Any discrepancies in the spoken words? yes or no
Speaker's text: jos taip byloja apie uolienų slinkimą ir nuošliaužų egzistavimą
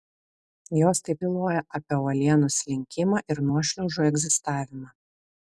no